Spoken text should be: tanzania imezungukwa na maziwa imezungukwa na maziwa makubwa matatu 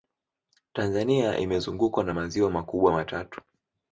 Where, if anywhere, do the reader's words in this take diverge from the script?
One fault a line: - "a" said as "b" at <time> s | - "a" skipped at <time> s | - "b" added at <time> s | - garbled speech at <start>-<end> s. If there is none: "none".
- "imezungukwa na maziwa" skipped at 2.5 s